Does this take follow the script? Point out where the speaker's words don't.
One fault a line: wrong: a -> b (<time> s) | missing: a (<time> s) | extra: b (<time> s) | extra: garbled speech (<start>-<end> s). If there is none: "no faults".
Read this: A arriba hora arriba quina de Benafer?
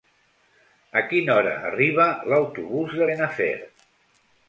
wrong: arriba -> quina (1.1 s)
wrong: quina -> l'autobús (2.3 s)